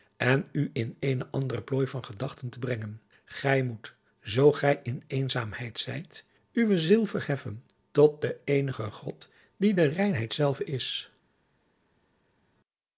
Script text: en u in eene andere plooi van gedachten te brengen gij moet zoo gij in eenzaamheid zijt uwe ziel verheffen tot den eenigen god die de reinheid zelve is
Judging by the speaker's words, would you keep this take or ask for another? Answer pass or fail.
pass